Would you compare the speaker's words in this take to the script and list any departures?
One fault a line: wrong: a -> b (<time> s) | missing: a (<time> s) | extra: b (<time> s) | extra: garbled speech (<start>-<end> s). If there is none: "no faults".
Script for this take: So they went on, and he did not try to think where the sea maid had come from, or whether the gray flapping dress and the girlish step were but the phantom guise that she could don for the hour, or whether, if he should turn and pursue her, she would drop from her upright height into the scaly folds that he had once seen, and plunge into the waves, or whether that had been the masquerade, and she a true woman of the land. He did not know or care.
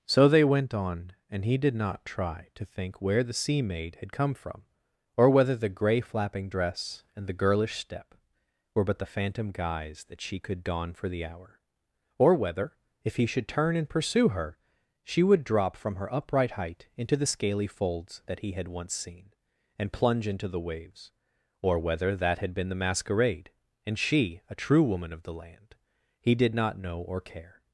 no faults